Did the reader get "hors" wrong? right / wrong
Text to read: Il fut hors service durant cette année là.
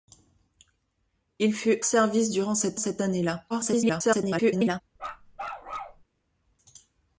wrong